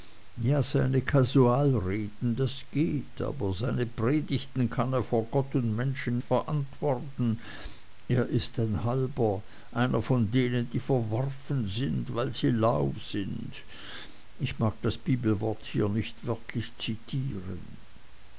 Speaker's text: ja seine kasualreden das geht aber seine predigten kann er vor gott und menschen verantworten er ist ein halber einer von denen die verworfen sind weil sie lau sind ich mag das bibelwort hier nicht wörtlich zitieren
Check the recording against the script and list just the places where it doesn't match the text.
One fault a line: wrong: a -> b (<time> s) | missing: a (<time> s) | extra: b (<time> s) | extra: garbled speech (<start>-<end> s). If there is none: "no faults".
no faults